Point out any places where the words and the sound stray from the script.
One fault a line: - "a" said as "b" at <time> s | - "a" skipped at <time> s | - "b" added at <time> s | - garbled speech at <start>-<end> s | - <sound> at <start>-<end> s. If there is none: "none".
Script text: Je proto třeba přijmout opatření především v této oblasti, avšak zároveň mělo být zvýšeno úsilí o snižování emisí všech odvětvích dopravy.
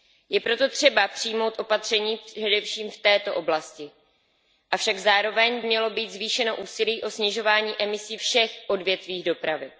none